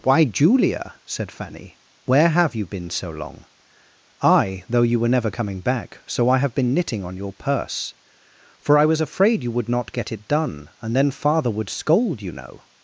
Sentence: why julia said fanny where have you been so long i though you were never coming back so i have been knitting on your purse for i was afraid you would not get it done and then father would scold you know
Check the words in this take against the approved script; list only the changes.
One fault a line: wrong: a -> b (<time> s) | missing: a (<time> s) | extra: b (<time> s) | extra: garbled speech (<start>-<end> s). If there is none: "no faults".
no faults